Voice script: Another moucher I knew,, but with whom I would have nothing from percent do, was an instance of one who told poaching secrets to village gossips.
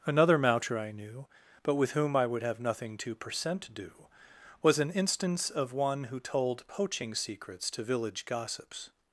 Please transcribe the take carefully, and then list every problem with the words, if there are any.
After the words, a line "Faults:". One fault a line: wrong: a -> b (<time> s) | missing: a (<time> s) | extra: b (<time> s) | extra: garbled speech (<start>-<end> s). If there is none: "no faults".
Another moucher I knew,, but with whom I would have nothing to percent do, was an instance of one who told poaching secrets to village gossips.
Faults:
wrong: from -> to (3.0 s)